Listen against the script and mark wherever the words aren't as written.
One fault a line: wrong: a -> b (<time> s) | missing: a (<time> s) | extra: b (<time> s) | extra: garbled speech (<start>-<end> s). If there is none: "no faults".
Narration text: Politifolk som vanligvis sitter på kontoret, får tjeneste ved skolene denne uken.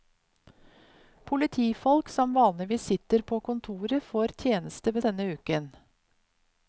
missing: skolene (5.0 s)